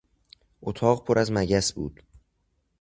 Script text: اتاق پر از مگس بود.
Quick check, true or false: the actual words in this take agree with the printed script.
true